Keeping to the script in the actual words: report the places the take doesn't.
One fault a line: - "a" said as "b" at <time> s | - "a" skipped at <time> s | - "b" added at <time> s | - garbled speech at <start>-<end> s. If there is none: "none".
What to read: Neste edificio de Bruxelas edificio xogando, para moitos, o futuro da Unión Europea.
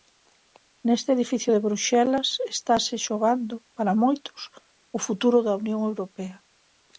- "edificio" said as "estase" at 2.5 s